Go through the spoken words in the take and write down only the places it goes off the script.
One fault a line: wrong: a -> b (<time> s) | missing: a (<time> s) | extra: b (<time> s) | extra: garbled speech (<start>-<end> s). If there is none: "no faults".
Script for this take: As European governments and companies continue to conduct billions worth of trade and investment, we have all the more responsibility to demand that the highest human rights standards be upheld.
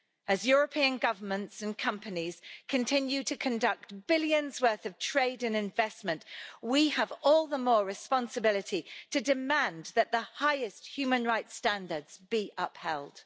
no faults